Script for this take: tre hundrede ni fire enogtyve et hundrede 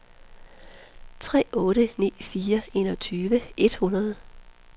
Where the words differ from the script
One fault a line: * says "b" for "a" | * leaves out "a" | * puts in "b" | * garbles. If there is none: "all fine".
* says "otte" for "hundrede"